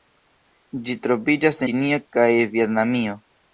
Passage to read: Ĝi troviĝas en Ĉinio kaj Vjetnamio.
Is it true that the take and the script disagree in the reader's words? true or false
true